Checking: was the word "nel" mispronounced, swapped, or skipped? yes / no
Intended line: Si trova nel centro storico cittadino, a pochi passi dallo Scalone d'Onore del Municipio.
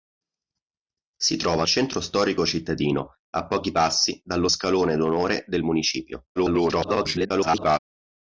yes